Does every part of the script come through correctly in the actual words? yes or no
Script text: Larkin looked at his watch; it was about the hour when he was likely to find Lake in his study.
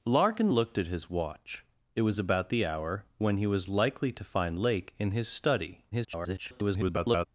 no